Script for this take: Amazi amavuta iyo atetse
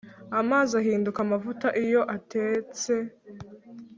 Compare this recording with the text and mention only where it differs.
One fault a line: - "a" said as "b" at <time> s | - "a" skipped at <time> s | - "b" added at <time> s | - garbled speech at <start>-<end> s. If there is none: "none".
- "ahinduka" added at 0.8 s